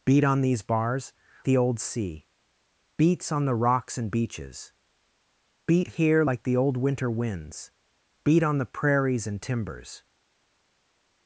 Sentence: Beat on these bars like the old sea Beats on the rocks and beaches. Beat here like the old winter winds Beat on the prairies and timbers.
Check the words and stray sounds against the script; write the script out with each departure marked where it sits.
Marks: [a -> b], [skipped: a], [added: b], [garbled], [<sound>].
Beat on these bars [skipped: like] the old sea Beats on the rocks and beaches. Beat here like the old winter winds Beat on the prairies and timbers.